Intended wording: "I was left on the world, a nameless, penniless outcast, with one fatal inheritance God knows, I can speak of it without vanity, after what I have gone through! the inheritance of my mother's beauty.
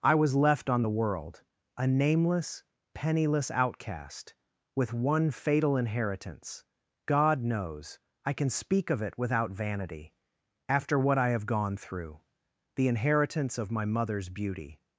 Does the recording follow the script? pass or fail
pass